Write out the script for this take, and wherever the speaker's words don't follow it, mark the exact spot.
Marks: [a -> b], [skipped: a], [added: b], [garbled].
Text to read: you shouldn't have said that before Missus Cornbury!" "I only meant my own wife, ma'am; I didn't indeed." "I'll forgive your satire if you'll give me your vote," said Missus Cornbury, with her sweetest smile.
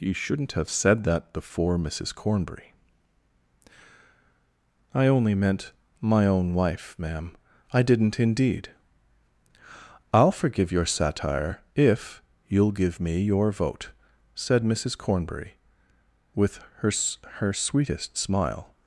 you shouldn't have said that before Missus Cornbury!" "I only meant my own wife, ma'am; I didn't indeed." "I'll forgive your satire if you'll give me your vote," said Missus Cornbury, with her [added: her] sweetest smile.